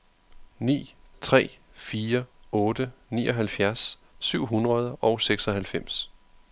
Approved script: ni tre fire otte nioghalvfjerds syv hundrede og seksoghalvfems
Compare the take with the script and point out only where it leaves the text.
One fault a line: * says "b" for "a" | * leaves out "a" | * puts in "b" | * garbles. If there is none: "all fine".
all fine